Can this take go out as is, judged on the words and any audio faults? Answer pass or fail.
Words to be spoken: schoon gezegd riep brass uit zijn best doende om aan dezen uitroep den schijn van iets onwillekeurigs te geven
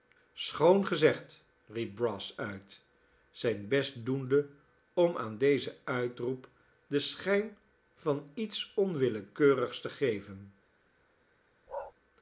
fail